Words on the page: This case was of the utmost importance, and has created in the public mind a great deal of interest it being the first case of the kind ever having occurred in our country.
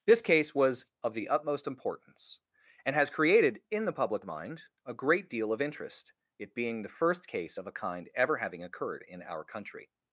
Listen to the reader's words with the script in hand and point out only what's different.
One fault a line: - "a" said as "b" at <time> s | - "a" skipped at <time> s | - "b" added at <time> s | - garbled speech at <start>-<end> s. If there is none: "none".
- "the" said as "a" at 7.7 s